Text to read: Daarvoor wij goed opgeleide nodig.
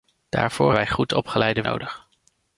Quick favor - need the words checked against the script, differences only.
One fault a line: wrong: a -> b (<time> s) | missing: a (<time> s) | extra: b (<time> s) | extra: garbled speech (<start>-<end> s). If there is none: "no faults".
no faults